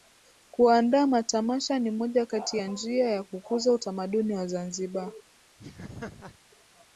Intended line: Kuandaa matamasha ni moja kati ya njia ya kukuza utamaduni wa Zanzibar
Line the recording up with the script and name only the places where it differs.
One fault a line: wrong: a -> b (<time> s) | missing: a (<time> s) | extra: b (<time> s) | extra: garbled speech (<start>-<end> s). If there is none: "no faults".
no faults